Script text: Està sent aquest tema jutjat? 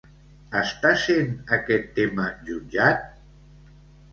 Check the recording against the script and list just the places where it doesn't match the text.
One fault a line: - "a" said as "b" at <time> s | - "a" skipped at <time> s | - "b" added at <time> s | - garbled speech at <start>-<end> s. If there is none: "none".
none